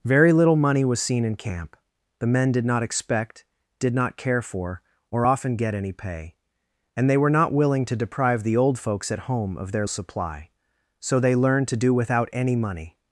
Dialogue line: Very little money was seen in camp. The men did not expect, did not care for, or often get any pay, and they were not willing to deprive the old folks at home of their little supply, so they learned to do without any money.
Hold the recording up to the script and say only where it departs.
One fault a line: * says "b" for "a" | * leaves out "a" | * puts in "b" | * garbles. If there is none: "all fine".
* leaves out "little"